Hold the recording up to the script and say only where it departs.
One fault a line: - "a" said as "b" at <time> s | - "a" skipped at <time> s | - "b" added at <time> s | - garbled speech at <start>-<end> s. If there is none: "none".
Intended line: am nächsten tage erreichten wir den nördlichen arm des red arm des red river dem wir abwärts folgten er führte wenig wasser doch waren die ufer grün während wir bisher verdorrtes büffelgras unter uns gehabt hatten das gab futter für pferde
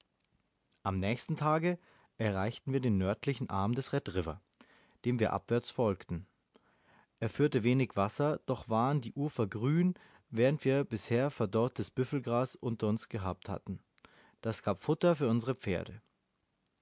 - "arm des red" skipped at 4.1 s
- "unsere" added at 15.3 s